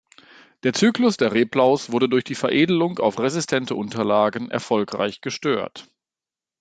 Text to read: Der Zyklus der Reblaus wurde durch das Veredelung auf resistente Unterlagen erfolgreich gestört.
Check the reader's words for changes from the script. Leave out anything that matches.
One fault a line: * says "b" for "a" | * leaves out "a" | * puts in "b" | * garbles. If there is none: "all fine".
* says "die" for "das"